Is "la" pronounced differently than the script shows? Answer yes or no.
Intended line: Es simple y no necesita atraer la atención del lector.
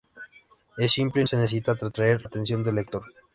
yes